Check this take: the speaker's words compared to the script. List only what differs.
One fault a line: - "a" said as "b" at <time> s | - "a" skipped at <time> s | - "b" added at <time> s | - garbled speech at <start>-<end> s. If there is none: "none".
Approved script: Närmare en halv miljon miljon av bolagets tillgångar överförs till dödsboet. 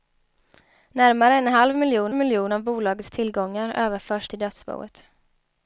none